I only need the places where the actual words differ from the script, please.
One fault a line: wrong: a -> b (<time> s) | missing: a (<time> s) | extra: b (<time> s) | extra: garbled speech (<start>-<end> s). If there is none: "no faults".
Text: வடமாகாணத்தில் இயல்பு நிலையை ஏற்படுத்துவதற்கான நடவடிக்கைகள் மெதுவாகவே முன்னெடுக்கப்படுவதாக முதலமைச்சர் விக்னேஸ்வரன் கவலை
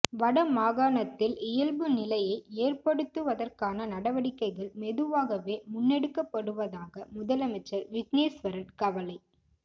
no faults